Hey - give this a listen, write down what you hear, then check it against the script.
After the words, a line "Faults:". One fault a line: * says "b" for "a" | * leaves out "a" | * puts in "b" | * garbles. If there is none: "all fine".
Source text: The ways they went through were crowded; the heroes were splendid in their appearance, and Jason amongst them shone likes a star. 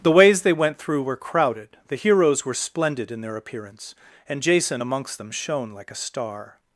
The ways they went through were crowded; the heroes were splendid in their appearance, and Jason amongst them shone like a star.
Faults:
* says "like" for "likes"